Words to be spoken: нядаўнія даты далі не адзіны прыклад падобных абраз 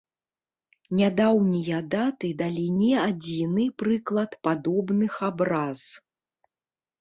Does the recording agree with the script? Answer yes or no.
yes